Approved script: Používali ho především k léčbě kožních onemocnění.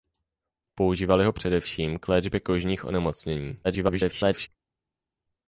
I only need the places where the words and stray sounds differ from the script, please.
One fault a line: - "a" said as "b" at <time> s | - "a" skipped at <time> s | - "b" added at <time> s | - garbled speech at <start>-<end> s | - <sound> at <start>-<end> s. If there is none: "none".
- garbled speech at 3.6-4.5 s